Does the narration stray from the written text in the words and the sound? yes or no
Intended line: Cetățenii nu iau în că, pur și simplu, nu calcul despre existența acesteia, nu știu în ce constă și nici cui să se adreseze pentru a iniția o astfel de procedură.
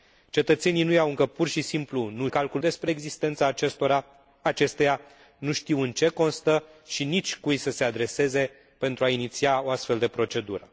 no